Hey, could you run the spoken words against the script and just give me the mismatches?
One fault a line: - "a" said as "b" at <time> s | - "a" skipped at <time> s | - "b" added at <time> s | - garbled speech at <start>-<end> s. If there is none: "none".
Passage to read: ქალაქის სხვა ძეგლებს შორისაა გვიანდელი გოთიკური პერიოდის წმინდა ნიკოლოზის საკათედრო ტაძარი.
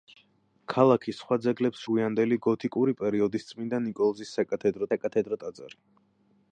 - "შორისაა" skipped at 1.8 s
- "საკათედრო" added at 4.9 s